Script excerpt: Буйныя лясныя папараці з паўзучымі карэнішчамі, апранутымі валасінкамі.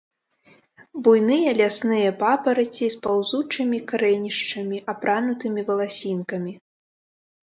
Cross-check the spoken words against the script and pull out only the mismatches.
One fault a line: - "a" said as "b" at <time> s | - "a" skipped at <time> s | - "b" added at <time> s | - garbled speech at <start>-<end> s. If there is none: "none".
none